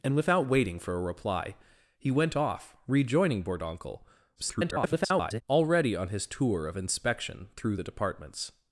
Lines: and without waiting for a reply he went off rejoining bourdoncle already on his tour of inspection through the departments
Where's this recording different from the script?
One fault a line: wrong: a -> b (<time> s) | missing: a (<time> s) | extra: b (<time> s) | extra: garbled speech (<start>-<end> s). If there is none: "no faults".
extra: garbled speech (4.4-5.4 s)